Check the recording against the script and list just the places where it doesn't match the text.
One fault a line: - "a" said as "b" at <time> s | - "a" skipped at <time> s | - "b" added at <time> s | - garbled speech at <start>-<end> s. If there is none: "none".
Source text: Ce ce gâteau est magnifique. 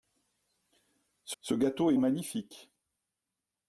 none